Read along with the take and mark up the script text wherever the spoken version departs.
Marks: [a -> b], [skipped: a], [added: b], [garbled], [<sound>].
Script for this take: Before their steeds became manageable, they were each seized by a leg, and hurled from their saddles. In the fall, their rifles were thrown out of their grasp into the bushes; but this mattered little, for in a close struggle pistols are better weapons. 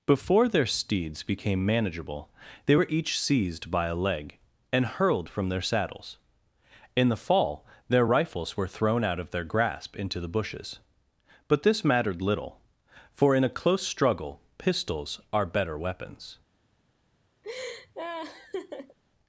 Before their steeds became manageable, they were each seized by a leg, and hurled from their saddles. In the fall, their rifles were thrown out of their grasp into the bushes; but this mattered little, for in a close struggle pistols are better weapons. [laugh]